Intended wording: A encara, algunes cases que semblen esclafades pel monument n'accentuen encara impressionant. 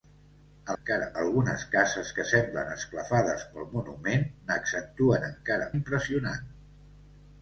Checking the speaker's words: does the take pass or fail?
pass